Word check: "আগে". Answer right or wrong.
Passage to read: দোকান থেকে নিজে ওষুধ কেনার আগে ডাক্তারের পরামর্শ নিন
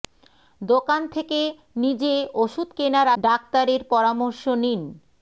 wrong